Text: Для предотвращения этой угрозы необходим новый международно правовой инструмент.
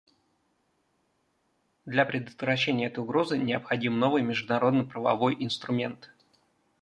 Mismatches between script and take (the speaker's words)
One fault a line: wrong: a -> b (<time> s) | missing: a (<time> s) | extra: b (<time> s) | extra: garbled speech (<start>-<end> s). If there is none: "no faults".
no faults